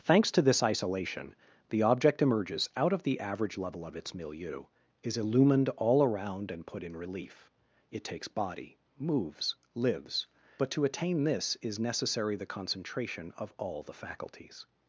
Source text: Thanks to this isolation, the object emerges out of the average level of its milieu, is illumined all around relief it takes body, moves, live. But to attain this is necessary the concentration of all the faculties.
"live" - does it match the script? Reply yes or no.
no